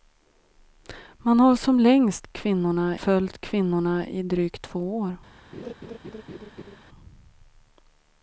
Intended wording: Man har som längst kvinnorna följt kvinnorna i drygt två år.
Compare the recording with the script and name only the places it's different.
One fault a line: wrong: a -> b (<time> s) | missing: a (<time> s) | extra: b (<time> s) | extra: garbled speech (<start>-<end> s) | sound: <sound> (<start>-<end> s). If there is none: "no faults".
sound: laugh (5.5-6.8 s)